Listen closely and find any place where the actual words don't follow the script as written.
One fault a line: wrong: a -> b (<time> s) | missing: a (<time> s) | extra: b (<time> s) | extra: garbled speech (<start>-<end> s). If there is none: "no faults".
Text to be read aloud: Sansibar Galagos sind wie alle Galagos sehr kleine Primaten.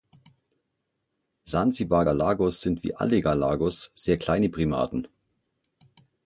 no faults